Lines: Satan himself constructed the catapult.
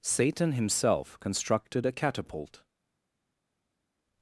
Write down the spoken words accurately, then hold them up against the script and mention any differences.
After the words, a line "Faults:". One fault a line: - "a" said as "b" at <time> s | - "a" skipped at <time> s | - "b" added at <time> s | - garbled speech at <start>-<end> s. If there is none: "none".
Satan himself constructed a catapult.
Faults:
- "the" said as "a" at 1.8 s